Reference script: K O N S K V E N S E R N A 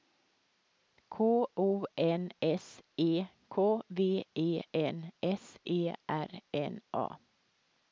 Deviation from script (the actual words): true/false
true